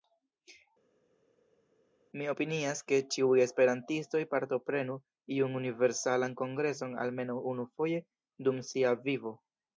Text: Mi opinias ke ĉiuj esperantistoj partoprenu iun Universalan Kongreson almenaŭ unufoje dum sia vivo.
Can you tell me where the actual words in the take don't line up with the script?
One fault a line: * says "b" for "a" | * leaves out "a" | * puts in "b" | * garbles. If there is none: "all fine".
all fine